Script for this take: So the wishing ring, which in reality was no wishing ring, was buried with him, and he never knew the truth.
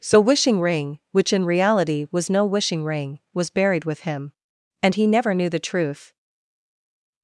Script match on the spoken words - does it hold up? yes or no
no